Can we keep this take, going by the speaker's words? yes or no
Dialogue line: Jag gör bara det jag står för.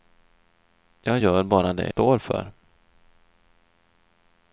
no